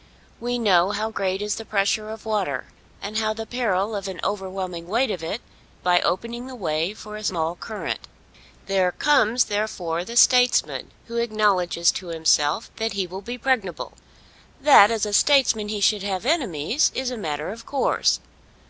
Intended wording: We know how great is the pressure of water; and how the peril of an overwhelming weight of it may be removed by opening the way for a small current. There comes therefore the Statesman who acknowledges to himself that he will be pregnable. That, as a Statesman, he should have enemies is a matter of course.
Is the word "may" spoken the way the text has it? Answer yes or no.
no